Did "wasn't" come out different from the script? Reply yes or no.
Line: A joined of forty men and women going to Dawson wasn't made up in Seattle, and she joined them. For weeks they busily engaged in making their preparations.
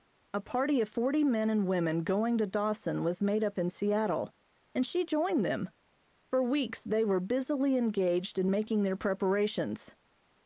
yes